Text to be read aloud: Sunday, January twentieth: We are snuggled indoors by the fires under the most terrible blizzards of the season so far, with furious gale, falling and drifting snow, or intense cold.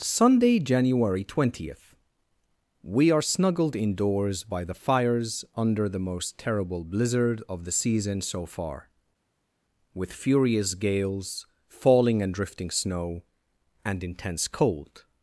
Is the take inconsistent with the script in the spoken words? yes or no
yes